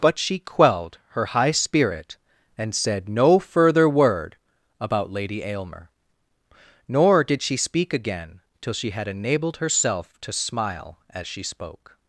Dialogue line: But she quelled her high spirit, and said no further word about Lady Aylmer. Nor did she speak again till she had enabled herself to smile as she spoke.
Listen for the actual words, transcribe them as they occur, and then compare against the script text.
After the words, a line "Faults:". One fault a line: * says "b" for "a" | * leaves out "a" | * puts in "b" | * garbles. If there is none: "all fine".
But she quelled her high spirit, and said no further word about Lady Aylmer. Nor did she speak again till she had enabled herself to smile as she spoke.
Faults:
all fine